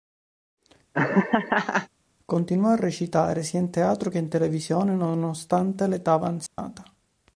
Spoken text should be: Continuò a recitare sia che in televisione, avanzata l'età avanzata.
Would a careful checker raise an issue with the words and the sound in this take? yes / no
yes